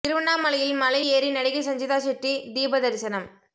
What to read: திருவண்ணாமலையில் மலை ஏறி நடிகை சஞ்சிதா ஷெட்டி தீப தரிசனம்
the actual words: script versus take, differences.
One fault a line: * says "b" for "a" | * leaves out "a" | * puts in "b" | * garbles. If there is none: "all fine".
all fine